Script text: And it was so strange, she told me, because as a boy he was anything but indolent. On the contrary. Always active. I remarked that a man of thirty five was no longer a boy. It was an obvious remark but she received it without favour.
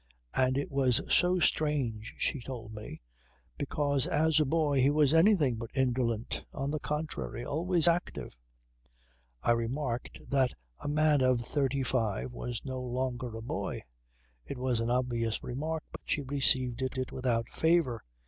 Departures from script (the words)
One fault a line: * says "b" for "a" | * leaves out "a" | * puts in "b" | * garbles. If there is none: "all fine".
* puts in "it"